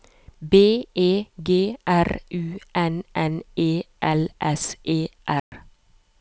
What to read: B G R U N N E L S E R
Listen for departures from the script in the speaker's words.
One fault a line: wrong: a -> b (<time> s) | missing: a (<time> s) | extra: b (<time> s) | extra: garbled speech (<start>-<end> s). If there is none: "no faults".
extra: E (0.9 s)